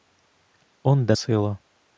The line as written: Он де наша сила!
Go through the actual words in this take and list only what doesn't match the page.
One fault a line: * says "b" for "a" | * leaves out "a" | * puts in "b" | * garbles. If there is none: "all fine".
* leaves out "наша"